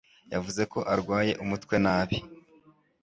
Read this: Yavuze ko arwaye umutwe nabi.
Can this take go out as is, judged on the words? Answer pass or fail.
pass